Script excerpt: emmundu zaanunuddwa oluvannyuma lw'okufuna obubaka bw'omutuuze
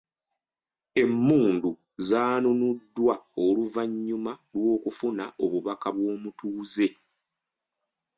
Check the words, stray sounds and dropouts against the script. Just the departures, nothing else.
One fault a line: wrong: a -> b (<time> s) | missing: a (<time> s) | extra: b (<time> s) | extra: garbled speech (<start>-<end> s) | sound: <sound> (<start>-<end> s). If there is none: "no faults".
no faults